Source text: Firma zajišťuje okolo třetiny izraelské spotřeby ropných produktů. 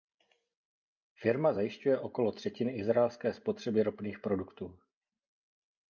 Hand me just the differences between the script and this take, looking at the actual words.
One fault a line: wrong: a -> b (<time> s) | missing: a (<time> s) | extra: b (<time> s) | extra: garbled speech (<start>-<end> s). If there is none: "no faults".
no faults